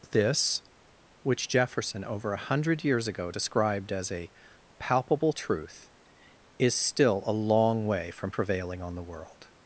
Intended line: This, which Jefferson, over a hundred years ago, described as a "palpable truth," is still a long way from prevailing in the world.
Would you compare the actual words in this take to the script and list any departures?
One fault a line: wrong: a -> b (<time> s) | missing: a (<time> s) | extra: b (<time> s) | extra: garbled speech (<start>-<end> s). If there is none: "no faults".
wrong: in -> on (8.8 s)